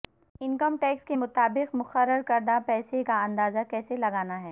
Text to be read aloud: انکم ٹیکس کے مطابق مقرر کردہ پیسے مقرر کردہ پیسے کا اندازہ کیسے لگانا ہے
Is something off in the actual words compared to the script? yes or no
yes